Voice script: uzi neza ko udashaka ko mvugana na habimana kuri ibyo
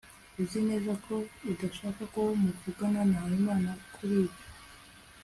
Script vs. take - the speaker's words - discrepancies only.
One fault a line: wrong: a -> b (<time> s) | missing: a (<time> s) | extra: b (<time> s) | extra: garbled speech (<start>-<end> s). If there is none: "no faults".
no faults